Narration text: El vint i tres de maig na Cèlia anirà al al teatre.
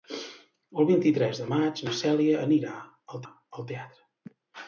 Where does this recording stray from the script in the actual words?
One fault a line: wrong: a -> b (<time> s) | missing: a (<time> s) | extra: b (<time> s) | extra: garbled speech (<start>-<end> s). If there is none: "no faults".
no faults